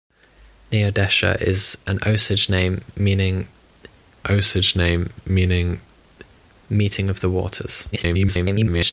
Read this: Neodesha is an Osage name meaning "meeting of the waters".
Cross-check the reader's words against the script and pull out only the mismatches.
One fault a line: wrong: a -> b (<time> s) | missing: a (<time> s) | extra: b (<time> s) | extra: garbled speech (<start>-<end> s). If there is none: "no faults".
extra: Osage name meaning (4.3 s)
extra: garbled speech (7.9-8.9 s)